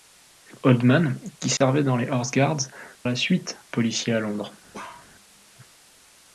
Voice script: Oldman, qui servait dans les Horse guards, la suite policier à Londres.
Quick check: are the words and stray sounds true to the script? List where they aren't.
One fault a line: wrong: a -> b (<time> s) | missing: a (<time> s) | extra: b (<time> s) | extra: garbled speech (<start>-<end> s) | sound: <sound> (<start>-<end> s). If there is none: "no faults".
sound: dropout (1.6-1.6 s)
sound: bark (4.7-5.1 s)